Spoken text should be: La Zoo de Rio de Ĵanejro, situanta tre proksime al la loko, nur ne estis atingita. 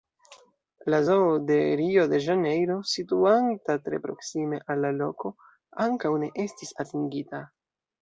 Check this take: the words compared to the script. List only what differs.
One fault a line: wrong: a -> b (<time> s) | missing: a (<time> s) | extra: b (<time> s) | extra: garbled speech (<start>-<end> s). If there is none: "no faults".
wrong: nur -> ankaŭ (5.9 s)